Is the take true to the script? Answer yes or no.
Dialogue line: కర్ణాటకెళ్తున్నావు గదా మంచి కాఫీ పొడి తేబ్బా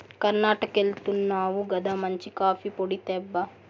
yes